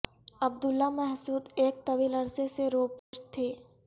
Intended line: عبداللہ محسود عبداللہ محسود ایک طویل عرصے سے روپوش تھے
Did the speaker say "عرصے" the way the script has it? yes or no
yes